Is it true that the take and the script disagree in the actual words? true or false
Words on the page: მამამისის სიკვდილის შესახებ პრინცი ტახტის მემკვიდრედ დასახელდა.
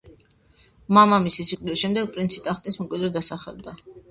true